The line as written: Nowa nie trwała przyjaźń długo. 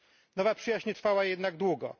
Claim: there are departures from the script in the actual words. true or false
true